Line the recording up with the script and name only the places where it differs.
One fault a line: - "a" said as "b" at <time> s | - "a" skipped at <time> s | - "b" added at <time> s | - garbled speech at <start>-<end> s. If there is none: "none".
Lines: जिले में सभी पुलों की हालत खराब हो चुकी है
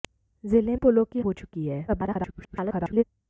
- "में सभी" skipped at 0.8 s
- "हालत खराब" skipped at 1.2 s
- garbled speech at 1.9-3.0 s